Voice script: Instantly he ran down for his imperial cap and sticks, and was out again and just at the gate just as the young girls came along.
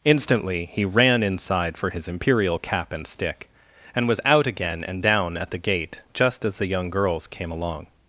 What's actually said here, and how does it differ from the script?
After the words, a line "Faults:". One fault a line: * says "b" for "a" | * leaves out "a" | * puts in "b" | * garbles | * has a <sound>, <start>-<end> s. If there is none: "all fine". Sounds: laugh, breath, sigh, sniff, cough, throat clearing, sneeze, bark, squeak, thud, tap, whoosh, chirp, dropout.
Instantly he ran inside for his imperial cap and stick, and was out again and down at the gate just as the young girls came along.
Faults:
* says "inside" for "down"
* says "stick" for "sticks"
* says "down" for "just"